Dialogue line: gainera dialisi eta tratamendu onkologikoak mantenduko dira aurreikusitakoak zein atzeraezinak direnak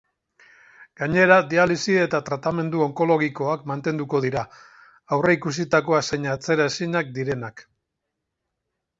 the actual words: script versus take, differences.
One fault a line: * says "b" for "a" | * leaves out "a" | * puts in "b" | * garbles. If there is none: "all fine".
all fine